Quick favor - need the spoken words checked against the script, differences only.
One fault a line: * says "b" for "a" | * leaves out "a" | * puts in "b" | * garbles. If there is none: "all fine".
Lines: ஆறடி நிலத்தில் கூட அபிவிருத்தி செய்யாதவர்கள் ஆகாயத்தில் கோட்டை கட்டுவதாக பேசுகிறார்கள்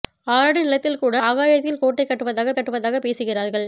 * leaves out "அபிவிருத்தி செய்யாதவர்கள்"
* puts in "கட்டுவதாக"